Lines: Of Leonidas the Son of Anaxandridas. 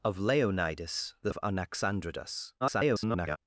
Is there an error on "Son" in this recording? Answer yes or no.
yes